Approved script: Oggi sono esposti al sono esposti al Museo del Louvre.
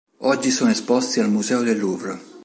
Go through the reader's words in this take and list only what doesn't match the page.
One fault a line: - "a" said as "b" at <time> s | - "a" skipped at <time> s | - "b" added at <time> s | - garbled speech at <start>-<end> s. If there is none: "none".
- "sono esposti al" skipped at 1.3 s